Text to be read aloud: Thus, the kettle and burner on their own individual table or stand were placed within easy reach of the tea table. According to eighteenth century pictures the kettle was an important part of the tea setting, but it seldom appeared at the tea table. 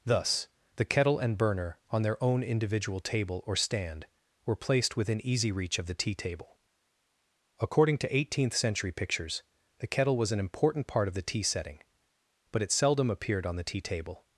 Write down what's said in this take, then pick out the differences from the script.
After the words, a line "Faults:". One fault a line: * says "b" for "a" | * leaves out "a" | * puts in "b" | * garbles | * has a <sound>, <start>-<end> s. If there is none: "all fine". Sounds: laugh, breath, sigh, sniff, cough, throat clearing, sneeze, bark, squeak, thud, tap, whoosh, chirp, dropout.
Thus, the kettle and burner on their own individual table or stand were placed within easy reach of the tea table. According to eighteenth century pictures the kettle was an important part of the tea setting, but it seldom appeared on the tea table.
Faults:
* says "on" for "at"